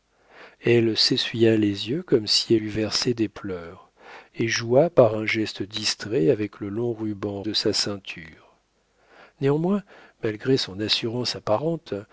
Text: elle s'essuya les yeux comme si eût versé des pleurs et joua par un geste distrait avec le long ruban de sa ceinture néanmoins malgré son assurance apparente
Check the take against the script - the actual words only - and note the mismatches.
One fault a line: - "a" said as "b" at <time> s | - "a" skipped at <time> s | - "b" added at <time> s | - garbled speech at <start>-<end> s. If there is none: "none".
none